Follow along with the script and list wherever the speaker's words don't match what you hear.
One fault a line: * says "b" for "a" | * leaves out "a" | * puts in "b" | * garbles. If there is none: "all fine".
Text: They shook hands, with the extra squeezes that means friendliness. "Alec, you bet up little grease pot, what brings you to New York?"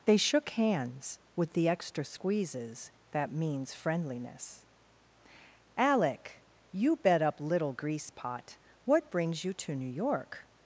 all fine